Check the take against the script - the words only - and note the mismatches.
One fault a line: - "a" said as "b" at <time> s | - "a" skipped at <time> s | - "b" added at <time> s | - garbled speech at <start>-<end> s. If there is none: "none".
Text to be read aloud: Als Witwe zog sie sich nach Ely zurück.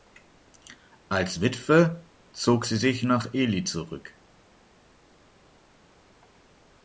none